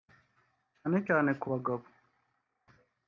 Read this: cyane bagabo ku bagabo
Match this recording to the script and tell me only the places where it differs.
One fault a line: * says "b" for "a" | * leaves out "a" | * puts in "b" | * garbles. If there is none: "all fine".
* says "cyane" for "bagabo"